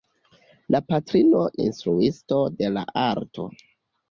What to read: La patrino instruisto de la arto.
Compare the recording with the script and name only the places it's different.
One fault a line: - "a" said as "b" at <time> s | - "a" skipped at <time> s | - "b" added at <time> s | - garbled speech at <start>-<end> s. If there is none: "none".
none